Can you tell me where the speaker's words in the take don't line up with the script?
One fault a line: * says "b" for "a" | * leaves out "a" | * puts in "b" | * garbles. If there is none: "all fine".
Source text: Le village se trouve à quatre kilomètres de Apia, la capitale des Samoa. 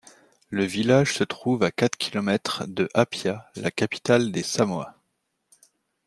all fine